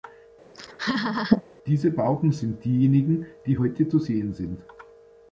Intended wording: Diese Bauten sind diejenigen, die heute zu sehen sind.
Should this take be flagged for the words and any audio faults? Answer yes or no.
yes